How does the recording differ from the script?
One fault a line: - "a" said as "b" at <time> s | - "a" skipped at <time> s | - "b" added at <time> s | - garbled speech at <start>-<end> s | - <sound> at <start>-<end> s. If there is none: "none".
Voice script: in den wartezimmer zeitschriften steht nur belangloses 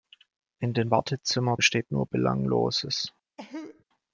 - "zeitschriften" skipped at 1.6 s
- cough at 3.4-3.8 s